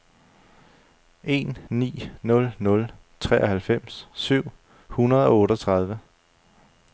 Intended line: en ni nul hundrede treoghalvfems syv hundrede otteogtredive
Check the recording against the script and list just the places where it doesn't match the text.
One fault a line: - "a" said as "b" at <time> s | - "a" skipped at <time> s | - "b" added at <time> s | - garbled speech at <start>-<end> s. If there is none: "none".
- "hundrede" said as "nul" at 2.6 s
- "og" added at 5.3 s